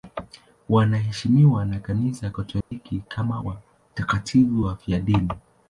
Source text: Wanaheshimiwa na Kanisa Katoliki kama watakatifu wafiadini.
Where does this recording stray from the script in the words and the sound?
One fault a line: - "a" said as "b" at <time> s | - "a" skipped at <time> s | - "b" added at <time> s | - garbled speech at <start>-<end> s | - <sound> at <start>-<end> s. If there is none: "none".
- dropout at 2.6-2.7 s